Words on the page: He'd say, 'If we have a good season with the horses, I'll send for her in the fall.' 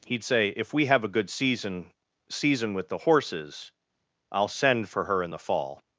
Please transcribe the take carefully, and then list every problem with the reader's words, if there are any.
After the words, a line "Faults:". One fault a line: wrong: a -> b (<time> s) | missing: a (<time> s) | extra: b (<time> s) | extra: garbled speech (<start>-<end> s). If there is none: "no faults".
He'd say, 'If we have a good season season with the horses, I'll send for her in the fall.'
Faults:
extra: season (2.3 s)